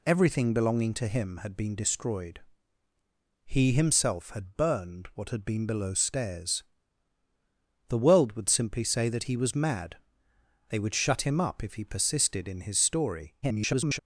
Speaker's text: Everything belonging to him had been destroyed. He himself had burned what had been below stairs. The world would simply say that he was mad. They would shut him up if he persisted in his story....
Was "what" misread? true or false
false